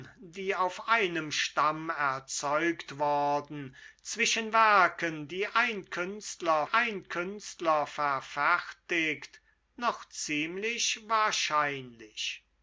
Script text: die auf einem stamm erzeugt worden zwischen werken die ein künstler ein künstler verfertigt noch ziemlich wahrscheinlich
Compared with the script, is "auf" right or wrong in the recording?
right